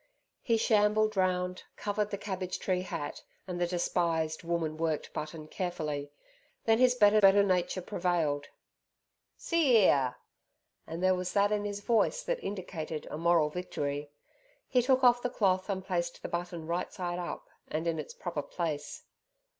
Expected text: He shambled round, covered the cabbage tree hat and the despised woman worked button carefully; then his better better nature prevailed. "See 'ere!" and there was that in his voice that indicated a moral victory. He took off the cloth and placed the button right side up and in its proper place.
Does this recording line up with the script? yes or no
yes